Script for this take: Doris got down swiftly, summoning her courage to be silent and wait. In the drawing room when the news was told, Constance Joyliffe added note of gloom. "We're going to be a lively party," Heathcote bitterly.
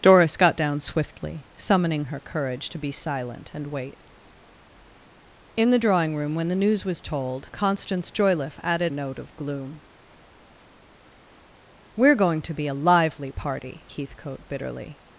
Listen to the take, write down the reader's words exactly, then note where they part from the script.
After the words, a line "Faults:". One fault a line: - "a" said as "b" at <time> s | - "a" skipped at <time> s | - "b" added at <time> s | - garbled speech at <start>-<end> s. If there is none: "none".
Doris got down swiftly, summoning her courage to be silent and wait. In the drawing room when the news was told, Constance Joyliffe added note of gloom. "We're going to be a lively party," Heathcote bitterly.
Faults:
none